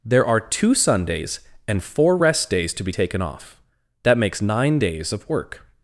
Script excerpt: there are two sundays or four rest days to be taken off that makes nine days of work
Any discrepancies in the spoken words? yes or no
yes